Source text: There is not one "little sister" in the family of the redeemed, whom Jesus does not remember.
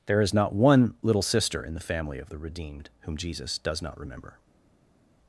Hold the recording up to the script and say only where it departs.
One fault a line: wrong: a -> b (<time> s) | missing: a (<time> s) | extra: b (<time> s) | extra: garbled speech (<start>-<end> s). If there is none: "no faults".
no faults